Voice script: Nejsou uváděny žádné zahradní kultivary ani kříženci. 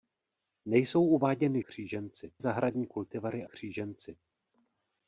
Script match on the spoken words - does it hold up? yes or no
no